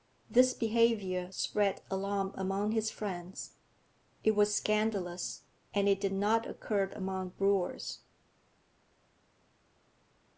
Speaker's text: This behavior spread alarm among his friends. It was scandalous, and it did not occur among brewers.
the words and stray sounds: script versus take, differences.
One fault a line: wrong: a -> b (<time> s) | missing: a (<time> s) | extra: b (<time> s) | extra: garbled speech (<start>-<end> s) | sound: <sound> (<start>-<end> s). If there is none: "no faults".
no faults